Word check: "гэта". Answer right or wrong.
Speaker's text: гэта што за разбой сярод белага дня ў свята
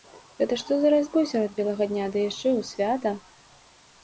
right